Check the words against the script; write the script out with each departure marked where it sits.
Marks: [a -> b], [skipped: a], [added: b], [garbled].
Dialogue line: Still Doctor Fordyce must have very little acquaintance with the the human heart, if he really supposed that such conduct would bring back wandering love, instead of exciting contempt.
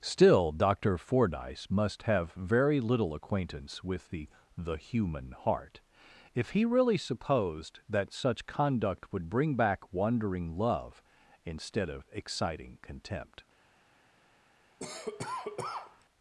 Still Doctor Fordyce must have very little acquaintance with the the human heart, if he really supposed that such conduct would bring back wandering love, instead of exciting contempt.